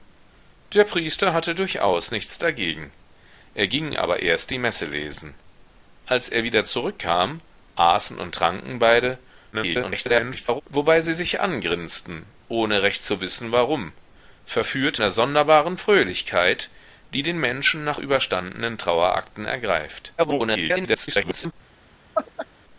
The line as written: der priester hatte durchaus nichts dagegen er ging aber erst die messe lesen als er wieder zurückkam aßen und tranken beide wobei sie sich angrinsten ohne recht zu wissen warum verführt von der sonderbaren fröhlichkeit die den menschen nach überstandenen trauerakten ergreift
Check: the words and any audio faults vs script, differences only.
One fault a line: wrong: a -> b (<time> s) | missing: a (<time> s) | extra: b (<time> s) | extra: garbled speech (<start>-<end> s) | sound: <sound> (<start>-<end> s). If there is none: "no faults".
extra: garbled speech (9.5-10.6 s)
missing: von (15.0 s)
extra: garbled speech (20.2-21.5 s)
sound: laugh (22.1-22.5 s)